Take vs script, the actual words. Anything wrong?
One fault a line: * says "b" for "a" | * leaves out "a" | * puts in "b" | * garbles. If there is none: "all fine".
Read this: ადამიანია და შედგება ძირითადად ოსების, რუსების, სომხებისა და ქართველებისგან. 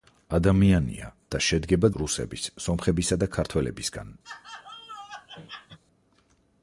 * leaves out "ძირითადად ოსების"